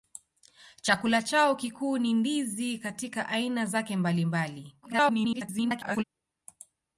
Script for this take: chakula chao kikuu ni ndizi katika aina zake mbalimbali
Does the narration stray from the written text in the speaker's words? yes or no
yes